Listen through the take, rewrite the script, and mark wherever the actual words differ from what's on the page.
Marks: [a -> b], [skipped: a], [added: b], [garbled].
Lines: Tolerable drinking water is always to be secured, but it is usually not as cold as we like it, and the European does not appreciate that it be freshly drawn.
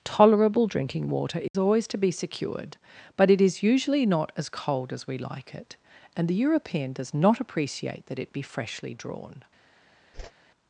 Tolerable drinking water is always to be secured, but it is usually not as cold as we like it, and the European does not appreciate that it be freshly drawn.